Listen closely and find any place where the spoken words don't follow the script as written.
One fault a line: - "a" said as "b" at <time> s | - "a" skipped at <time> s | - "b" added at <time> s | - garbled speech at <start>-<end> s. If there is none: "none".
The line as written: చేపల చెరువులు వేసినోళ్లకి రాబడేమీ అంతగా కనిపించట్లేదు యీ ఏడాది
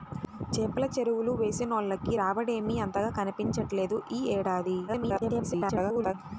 - garbled speech at 4.9-6.1 s